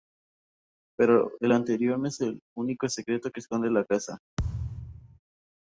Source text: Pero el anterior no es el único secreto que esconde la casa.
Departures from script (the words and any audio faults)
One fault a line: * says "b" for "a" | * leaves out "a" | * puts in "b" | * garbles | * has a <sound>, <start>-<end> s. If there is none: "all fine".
* has a thud, 4.4-5.2 s